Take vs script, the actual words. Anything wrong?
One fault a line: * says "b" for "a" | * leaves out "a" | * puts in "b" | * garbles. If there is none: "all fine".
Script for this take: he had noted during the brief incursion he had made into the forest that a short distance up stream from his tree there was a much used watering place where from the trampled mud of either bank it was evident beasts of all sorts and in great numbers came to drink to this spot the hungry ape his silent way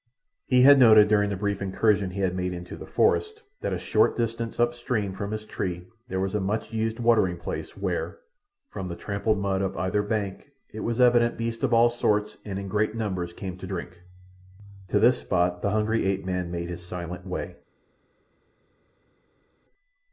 * puts in "man made"